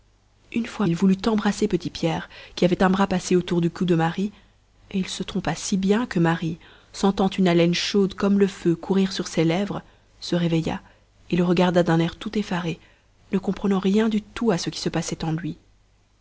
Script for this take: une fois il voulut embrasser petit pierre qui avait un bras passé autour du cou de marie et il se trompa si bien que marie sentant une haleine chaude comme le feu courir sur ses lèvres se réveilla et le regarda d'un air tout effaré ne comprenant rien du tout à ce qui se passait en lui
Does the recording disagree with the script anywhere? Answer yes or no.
no